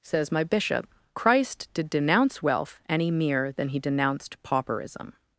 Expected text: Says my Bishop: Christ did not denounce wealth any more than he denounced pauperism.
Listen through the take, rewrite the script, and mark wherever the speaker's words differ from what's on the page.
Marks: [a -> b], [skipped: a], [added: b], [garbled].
Says my Bishop: Christ did [skipped: not] denounce wealth any [more -> mere] than he denounced pauperism.